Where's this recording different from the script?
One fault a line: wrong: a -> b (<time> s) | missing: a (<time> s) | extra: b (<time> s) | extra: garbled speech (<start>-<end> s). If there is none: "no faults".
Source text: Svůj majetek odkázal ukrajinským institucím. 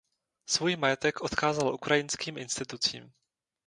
no faults